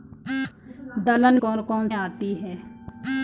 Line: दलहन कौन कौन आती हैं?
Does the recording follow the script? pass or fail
pass